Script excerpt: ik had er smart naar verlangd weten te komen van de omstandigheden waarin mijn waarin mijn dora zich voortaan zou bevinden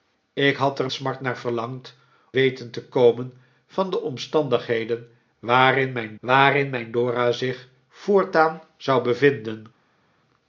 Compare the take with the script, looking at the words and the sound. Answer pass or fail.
pass